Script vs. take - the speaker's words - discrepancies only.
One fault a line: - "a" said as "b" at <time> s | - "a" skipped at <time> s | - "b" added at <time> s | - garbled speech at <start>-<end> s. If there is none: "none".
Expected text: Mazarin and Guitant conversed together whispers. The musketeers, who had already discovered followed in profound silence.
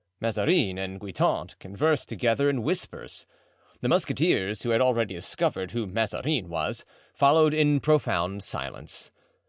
- "in" added at 2.5 s
- "who Mazarin was" added at 5.7 s